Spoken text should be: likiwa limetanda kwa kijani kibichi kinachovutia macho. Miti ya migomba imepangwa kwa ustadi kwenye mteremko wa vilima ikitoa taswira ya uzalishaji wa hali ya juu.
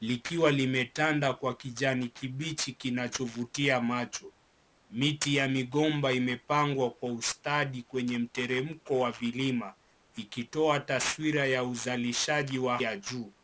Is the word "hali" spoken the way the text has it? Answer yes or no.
no